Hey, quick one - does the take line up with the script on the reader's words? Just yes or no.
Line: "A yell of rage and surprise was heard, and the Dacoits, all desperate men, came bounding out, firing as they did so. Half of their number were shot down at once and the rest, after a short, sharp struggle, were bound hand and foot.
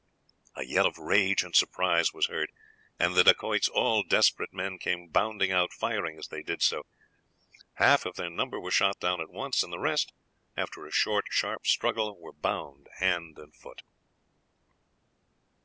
yes